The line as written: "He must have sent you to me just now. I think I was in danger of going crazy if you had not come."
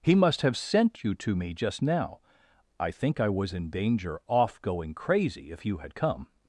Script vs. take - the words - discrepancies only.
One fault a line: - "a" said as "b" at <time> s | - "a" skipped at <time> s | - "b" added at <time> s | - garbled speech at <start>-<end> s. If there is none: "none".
- "of" said as "off" at 4.3 s
- "not" skipped at 5.9 s